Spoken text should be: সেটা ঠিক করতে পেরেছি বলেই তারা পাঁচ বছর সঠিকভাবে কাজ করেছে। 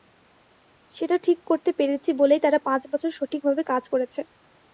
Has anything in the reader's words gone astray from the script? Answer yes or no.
no